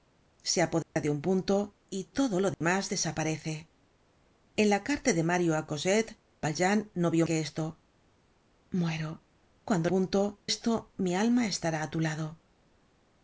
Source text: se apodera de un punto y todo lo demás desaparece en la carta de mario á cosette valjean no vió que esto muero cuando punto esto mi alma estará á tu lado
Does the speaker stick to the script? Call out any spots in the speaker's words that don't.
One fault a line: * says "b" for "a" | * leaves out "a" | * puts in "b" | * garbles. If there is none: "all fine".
all fine